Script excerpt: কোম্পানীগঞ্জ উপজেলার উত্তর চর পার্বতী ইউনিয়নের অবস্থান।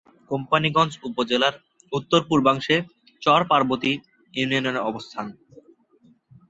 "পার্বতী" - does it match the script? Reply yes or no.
yes